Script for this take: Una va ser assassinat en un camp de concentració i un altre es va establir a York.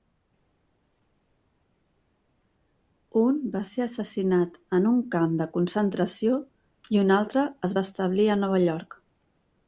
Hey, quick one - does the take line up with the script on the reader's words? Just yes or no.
no